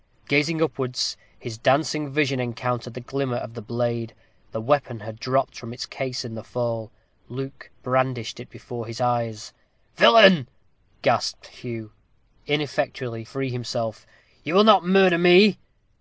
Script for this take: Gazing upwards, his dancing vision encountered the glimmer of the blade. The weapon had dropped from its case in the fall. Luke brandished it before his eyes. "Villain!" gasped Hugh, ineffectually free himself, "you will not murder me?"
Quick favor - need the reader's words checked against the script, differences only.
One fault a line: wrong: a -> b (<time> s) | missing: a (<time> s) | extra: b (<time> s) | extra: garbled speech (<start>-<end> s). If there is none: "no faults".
no faults